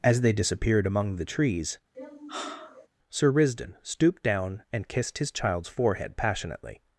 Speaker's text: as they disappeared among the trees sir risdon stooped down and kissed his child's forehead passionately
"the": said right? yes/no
yes